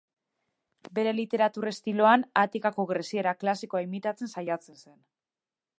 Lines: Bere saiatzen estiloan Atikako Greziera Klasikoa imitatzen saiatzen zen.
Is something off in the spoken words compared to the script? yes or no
yes